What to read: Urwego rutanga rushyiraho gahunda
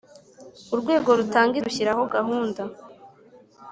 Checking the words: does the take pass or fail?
pass